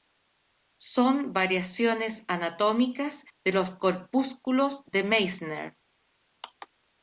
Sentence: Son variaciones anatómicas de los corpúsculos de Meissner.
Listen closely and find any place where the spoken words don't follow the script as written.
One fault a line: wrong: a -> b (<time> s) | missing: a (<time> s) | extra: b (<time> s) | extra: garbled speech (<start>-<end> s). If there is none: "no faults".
no faults